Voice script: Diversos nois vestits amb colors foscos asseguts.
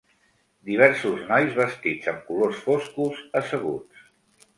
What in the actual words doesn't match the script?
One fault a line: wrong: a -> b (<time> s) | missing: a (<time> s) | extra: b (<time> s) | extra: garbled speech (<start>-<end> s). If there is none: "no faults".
no faults